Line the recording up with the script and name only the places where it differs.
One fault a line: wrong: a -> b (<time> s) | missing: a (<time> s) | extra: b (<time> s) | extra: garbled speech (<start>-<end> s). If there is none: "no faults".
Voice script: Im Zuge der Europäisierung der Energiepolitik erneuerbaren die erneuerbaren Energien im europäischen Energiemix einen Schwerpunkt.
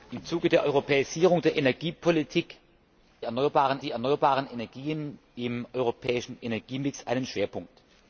no faults